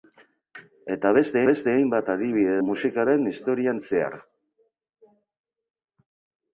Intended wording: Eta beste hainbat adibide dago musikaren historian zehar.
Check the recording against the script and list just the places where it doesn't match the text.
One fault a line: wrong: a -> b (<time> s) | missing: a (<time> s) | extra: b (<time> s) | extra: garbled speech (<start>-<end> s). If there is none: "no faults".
extra: beste (1.5 s)
missing: dago (2.5 s)